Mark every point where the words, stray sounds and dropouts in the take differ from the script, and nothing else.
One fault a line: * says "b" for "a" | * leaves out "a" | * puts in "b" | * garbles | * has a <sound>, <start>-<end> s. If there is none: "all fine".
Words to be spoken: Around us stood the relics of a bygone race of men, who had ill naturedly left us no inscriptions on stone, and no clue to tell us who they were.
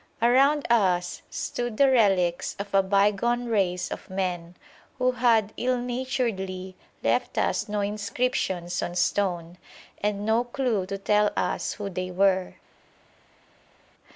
all fine